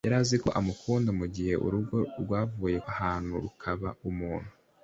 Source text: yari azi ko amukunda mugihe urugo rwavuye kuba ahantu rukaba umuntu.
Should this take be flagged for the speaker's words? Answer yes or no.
yes